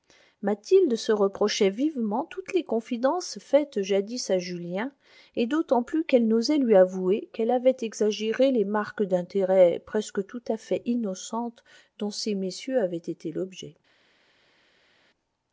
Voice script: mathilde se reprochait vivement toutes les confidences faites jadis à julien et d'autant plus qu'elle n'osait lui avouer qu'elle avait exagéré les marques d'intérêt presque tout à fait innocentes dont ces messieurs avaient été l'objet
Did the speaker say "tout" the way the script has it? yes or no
yes